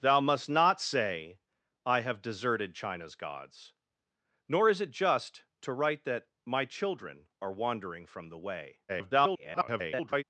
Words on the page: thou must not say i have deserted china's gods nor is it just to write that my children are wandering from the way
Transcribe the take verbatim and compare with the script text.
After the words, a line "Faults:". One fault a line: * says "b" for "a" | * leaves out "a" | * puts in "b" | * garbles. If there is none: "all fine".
thou must not say i have deserted china's gods nor is it just to write that my children are wandering from the way [garbled]
Faults:
* garbles